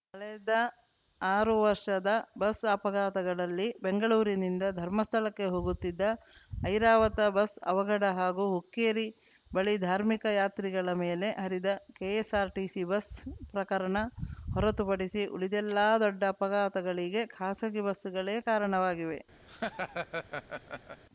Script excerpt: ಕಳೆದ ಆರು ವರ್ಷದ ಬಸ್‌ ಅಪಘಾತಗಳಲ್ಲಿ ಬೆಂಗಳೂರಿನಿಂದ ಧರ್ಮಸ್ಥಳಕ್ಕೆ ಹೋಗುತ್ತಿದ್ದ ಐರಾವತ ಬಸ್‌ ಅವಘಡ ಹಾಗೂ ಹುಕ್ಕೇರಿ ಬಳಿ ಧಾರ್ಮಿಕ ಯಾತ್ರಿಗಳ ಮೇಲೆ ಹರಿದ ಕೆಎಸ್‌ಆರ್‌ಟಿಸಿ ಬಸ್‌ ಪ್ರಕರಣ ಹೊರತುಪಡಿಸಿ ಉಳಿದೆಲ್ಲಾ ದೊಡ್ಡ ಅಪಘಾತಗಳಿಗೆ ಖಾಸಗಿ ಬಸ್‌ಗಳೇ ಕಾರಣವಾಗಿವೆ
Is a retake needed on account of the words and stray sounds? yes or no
yes